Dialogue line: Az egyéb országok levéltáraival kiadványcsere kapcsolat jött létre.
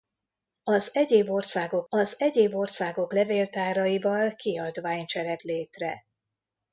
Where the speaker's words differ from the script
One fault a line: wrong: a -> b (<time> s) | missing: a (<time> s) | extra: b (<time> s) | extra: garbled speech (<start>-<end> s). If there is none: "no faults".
extra: az egyéb országok (1.9 s)
missing: kapcsolat jött (5.4 s)